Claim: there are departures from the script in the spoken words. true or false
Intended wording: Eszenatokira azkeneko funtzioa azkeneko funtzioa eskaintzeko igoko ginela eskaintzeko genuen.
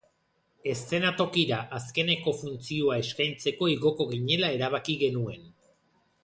true